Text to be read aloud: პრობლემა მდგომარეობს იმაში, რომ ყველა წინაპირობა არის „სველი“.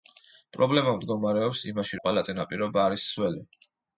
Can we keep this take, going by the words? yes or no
no